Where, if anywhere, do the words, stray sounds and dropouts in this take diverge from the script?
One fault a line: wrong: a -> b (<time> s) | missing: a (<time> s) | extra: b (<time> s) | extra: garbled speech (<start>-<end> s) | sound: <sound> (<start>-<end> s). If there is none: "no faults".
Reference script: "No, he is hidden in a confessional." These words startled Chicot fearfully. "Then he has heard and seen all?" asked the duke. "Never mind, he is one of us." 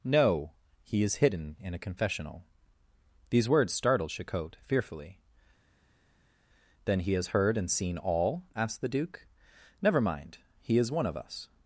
no faults